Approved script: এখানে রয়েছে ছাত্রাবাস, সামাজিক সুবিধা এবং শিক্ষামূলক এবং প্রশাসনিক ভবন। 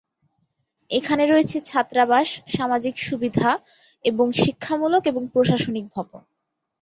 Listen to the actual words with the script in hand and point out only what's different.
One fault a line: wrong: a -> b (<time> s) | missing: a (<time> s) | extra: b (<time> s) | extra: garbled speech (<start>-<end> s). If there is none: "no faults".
no faults